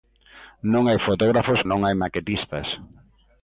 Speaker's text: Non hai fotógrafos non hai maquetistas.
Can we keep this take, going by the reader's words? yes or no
yes